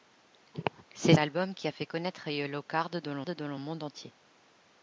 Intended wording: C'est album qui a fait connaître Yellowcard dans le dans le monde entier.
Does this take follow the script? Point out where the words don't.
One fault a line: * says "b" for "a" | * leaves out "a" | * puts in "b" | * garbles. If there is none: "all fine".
all fine